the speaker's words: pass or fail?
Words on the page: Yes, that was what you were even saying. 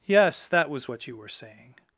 fail